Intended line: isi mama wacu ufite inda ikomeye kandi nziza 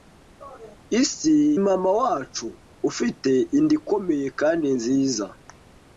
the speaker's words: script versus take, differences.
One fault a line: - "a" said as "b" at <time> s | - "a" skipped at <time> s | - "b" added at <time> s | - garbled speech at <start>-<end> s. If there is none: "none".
none